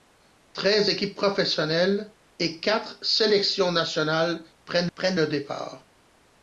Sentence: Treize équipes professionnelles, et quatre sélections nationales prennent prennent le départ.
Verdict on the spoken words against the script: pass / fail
pass